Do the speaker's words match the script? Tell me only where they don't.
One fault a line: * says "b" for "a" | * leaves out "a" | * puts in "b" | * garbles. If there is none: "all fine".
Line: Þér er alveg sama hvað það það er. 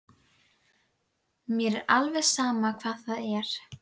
* says "Mér" for "Þér"
* leaves out "það"